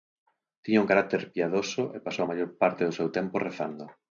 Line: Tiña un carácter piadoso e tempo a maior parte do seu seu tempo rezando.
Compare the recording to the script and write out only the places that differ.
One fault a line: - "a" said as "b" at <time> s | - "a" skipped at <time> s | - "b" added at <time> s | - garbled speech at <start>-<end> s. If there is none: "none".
- "tempo" said as "pasou" at 2.1 s
- "seu" skipped at 3.1 s